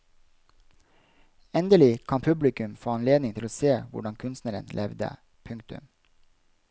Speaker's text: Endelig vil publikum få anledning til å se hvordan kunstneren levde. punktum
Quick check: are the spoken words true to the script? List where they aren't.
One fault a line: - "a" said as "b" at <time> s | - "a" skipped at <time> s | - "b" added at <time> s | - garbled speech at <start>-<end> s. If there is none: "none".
- "vil" said as "kan" at 2.1 s